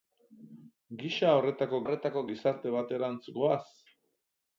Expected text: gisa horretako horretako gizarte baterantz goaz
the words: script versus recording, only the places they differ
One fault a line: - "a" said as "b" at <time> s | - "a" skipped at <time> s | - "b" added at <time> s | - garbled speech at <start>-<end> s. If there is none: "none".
none